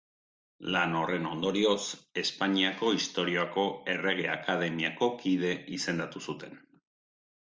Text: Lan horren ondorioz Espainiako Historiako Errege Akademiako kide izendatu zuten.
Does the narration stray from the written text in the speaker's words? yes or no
no